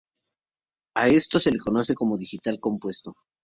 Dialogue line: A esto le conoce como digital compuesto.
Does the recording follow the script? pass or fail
fail